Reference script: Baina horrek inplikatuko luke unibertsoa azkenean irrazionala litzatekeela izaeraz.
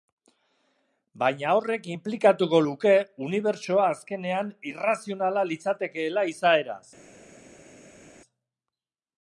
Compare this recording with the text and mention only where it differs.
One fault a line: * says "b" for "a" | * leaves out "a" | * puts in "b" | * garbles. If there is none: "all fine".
all fine